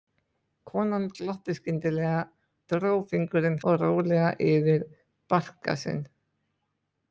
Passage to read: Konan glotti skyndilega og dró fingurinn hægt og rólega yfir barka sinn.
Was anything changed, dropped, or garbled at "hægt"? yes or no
yes